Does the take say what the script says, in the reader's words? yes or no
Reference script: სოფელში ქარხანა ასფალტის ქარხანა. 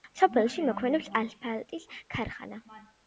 no